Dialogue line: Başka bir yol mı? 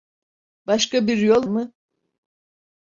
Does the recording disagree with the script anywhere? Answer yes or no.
no